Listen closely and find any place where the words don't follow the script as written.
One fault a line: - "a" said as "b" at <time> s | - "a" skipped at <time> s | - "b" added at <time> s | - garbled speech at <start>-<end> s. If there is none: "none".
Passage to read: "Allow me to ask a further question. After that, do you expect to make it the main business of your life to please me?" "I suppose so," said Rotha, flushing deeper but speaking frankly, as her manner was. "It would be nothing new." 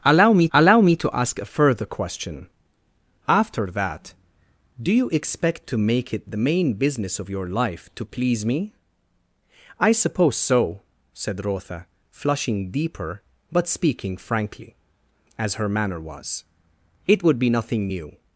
- "allow me" added at 0.5 s